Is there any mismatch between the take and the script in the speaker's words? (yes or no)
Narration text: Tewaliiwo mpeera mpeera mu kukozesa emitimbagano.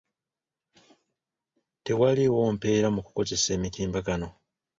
yes